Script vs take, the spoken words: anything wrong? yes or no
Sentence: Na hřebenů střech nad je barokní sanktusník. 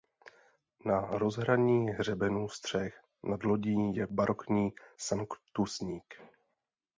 yes